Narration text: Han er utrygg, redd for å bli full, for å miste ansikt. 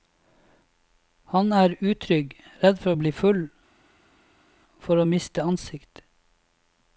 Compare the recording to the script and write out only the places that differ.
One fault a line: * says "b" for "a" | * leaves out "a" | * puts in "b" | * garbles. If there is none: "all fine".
all fine